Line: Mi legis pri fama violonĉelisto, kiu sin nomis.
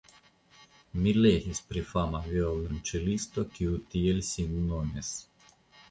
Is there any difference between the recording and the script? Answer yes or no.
yes